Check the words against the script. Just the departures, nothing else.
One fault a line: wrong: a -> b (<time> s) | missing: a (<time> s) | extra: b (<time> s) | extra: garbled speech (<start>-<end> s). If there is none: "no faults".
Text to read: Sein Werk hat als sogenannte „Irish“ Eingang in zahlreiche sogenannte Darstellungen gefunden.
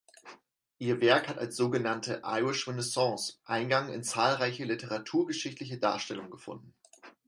wrong: Sein -> Ihr (0.8 s)
extra: Renaissance (2.7 s)
wrong: sogenannte -> literaturgeschichtliche (4.6 s)